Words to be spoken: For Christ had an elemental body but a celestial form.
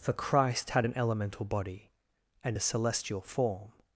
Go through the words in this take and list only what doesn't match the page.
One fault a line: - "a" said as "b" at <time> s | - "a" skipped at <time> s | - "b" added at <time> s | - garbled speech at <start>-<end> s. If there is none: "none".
- "but" said as "and" at 2.4 s